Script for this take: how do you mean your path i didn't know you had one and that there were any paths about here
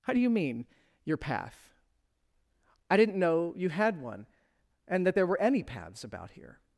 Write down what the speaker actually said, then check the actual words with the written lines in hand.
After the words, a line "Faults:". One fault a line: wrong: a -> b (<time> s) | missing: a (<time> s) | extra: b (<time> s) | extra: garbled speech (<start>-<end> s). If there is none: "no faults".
how do you mean your path i didn't know you had one and that there were any paths about here
Faults:
no faults